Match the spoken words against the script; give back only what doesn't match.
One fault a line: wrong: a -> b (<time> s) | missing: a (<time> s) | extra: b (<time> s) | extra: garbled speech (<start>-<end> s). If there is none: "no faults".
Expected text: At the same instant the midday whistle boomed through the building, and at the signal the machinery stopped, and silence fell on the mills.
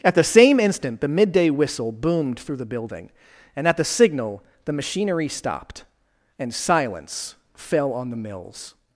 no faults